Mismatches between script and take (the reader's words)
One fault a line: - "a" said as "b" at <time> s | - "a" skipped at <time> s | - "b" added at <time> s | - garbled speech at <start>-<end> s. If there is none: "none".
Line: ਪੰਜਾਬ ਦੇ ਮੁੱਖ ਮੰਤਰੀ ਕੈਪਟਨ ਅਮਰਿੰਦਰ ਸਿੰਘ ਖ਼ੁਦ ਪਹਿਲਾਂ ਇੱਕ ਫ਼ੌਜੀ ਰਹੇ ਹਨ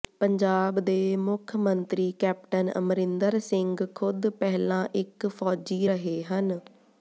none